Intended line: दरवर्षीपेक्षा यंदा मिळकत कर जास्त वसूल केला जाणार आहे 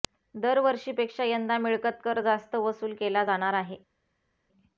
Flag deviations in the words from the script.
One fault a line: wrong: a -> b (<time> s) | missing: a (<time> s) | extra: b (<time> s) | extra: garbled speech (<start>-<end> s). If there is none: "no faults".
no faults